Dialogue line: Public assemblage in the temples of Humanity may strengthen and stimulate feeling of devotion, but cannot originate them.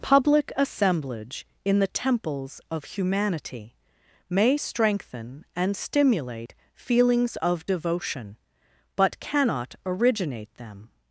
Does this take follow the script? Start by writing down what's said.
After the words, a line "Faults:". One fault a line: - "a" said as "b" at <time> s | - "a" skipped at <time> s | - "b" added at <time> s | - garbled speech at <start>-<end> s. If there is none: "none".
Public assemblage in the temples of Humanity may strengthen and stimulate feelings of devotion, but cannot originate them.
Faults:
- "feeling" said as "feelings" at 6.7 s